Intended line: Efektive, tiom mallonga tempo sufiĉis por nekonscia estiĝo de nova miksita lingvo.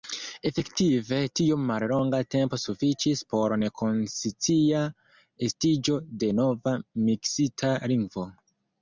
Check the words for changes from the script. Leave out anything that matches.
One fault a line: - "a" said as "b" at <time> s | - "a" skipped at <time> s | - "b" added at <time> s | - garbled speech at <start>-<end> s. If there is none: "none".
none